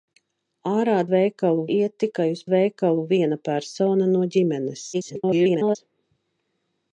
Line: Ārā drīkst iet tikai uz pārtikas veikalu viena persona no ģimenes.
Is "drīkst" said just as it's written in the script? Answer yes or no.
no